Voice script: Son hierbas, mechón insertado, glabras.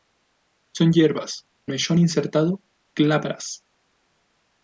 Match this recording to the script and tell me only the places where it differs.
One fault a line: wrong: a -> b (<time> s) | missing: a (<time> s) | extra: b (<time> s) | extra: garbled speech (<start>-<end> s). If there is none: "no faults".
no faults